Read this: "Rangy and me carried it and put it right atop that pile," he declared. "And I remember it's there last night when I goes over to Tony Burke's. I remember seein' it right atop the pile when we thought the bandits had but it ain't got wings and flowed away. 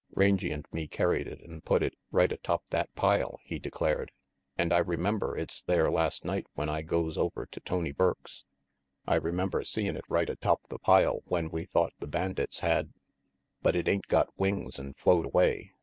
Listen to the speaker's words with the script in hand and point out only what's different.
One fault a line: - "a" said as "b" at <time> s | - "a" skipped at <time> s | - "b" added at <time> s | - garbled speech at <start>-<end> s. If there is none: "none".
none